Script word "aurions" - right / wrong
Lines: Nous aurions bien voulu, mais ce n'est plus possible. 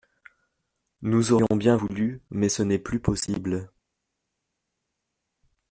right